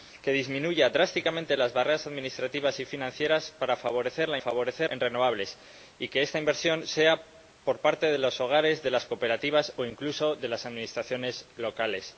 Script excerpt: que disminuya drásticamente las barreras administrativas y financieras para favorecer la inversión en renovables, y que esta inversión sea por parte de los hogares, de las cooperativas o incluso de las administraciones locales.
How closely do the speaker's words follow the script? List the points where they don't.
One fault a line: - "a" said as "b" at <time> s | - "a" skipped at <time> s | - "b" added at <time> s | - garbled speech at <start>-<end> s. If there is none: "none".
- "inversión" said as "favorecer" at 4.4 s